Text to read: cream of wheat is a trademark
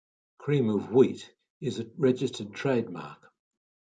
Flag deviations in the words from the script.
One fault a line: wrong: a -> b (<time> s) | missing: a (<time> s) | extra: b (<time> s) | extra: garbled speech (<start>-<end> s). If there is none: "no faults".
extra: registered (2.0 s)